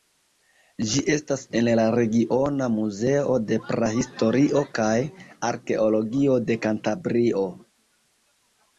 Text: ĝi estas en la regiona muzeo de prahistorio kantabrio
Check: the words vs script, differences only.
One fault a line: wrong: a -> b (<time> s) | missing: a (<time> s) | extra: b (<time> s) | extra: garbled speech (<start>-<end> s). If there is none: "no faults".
extra: kaj arkeologio de (4.8 s)